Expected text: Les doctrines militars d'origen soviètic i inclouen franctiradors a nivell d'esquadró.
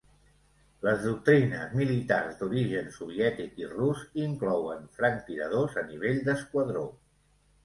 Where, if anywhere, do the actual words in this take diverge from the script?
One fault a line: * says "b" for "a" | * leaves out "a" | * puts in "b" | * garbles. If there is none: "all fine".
* puts in "rus"